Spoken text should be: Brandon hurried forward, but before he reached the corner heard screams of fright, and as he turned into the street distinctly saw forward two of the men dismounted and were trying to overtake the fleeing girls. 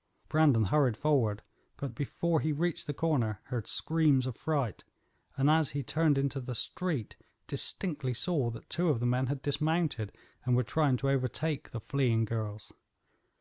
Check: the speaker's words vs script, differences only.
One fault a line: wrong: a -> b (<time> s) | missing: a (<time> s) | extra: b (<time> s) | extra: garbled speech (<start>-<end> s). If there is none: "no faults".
wrong: forward -> that (8.5 s)
extra: had (9.3 s)